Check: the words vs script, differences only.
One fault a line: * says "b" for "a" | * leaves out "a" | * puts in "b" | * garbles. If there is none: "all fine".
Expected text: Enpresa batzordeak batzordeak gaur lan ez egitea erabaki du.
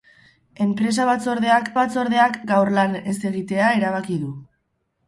all fine